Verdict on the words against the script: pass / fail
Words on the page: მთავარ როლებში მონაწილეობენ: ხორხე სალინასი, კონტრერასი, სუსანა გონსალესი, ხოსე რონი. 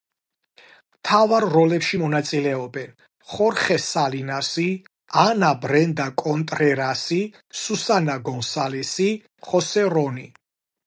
fail